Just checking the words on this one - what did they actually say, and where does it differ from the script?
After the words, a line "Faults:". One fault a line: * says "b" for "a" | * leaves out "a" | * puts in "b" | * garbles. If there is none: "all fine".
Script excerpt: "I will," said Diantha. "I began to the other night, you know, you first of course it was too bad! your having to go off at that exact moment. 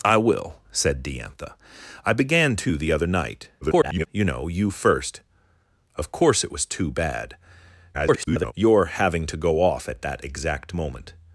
"I will," said Diantha. "I began to the other night, [garbled] you know, you first of course it was too bad! [garbled] your having to go off at that exact moment.
Faults:
* garbles
* garbles